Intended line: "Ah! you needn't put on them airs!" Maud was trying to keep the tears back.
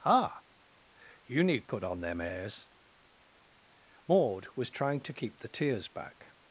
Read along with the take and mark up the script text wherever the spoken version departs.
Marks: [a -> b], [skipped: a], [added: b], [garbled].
"Ah! you [needn't -> need] put on them airs!" Maud was trying to keep the tears back.